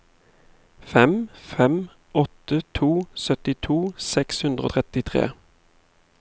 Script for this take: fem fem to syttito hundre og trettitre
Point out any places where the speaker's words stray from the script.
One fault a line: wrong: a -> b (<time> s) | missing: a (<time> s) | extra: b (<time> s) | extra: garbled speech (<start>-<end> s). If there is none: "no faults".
extra: åtte (2.1 s)
extra: seks (4.1 s)